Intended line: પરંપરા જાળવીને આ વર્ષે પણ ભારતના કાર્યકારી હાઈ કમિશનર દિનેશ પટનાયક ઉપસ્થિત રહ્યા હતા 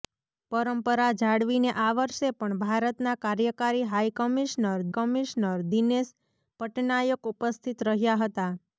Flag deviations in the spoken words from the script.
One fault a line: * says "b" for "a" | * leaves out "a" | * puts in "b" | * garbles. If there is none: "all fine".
* puts in "કમિશનર"